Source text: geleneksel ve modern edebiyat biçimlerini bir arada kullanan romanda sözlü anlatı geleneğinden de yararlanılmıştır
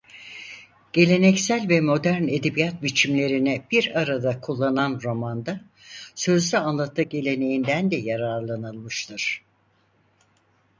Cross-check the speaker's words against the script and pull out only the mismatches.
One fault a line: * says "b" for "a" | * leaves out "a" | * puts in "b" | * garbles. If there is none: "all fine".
all fine